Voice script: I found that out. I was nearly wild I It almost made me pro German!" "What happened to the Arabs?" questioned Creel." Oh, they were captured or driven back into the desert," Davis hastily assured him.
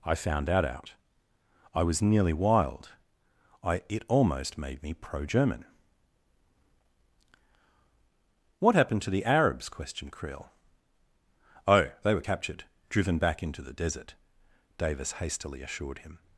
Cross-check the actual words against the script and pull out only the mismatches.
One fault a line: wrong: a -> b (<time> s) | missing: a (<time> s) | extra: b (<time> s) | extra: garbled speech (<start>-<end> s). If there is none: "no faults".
missing: or (12.6 s)